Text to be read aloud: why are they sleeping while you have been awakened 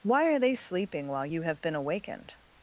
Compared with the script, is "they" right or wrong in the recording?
right